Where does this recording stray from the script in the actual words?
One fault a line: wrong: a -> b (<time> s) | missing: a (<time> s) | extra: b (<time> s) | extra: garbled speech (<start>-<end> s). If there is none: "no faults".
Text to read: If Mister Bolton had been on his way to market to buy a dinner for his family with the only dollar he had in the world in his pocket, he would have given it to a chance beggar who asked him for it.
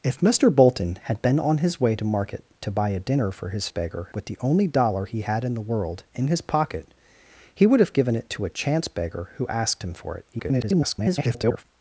wrong: family -> beggar (3.7 s)
extra: garbled speech (10.3-11.6 s)